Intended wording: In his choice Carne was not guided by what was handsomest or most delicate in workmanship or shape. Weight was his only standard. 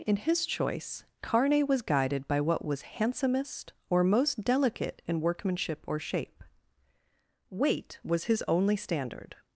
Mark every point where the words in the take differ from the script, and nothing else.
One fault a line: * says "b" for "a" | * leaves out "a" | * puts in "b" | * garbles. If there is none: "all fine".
* leaves out "not"